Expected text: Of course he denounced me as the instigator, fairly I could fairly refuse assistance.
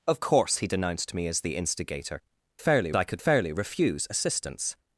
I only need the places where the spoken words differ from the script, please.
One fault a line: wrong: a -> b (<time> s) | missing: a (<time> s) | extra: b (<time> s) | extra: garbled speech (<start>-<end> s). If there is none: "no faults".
no faults